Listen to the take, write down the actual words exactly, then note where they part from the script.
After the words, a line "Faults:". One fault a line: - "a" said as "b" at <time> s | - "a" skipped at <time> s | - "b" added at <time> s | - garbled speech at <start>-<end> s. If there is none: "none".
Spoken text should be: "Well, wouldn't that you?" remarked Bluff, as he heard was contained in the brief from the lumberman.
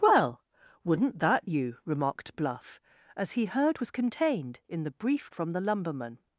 "Well, wouldn't that you?" remarked Bluff, as he heard was contained in the brief from the lumberman.
Faults:
none